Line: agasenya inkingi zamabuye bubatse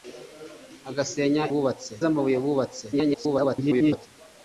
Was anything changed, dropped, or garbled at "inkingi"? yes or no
yes